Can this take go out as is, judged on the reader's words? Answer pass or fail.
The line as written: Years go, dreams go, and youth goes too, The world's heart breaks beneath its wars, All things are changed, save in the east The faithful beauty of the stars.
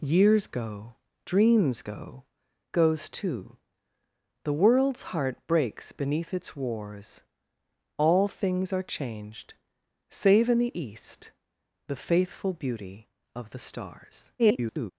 fail